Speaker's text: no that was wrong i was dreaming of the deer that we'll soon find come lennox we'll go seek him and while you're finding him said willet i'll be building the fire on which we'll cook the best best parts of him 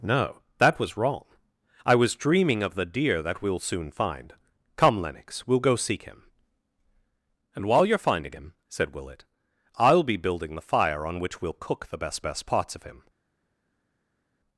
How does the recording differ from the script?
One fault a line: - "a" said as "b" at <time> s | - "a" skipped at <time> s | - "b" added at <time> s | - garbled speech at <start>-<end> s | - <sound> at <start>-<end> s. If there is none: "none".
none